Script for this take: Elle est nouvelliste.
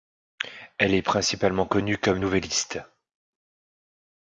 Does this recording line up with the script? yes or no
no